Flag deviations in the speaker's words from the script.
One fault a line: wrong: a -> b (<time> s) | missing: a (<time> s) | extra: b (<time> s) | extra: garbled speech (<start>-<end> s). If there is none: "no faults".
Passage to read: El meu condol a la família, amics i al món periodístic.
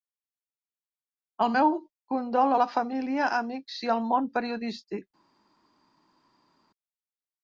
no faults